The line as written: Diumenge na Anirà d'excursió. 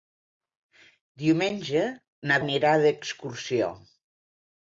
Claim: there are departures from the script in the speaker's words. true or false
false